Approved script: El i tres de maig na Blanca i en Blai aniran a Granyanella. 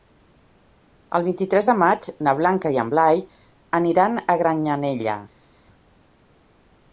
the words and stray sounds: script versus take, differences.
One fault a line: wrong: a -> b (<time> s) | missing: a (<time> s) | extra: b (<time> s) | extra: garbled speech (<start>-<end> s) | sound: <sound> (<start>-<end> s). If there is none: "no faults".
extra: vint (1.3 s)